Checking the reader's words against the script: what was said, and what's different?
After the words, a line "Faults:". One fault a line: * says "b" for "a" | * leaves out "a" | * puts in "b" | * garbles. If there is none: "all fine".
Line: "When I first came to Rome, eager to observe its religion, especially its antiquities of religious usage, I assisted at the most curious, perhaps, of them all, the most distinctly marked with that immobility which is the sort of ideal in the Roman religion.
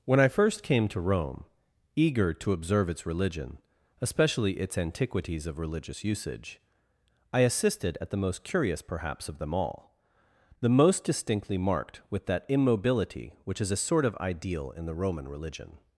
"When I first came to Rome, eager to observe its religion, especially its antiquities of religious usage, I assisted at the most curious, perhaps, of them all, the most distinctly marked with that immobility which is a sort of ideal in the Roman religion.
Faults:
* says "a" for "the"